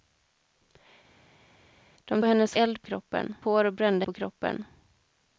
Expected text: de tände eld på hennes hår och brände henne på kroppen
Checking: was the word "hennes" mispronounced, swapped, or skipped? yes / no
yes